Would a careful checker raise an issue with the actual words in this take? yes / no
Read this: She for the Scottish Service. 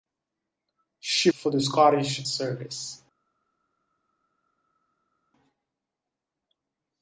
no